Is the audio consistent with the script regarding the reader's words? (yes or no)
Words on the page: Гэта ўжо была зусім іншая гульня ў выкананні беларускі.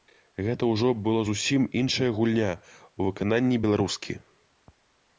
yes